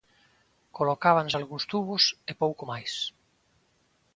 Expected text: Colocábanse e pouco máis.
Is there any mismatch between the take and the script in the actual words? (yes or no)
yes